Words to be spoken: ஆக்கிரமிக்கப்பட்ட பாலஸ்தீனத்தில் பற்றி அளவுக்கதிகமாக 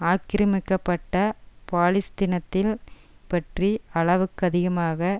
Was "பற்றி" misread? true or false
false